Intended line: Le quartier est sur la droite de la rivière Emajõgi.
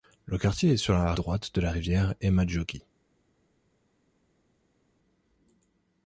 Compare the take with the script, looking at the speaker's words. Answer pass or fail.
pass